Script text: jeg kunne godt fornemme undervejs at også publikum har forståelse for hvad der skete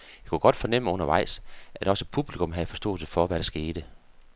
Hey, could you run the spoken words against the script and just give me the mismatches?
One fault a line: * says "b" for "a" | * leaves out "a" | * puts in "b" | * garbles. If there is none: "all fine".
* says "havde" for "har"